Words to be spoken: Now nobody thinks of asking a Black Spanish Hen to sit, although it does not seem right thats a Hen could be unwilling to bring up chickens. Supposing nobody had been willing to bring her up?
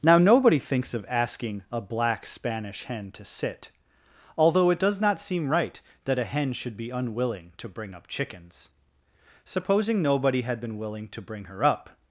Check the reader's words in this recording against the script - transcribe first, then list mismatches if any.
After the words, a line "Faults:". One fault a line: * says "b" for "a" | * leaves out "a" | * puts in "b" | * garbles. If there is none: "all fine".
Now nobody thinks of asking a Black Spanish Hen to sit, although it does not seem right that a Hen should be unwilling to bring up chickens. Supposing nobody had been willing to bring her up?
Faults:
* says "that" for "thats"
* says "should" for "could"